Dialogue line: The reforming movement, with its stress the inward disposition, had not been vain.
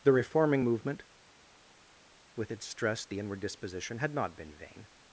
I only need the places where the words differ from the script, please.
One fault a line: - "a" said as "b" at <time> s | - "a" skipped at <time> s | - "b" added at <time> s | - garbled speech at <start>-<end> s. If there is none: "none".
none